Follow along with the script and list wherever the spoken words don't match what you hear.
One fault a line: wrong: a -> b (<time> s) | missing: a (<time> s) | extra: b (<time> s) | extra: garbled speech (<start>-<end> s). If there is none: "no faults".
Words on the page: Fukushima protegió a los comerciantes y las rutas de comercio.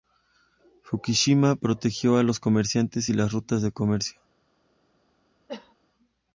no faults